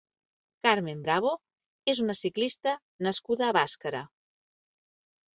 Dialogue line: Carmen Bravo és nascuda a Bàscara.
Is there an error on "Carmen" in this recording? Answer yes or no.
no